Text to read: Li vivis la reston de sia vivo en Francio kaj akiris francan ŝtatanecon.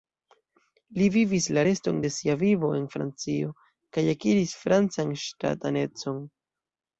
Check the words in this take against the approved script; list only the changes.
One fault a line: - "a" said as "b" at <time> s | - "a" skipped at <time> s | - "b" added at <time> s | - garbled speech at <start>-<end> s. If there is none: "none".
none